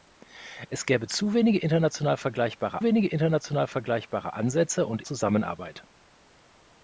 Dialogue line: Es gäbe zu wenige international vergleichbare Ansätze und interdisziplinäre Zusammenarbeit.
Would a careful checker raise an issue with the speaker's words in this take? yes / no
yes